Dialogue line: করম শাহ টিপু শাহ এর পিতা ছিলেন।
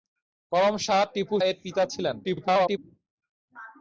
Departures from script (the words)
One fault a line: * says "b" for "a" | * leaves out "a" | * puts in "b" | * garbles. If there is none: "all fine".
* leaves out "শাহ"
* garbles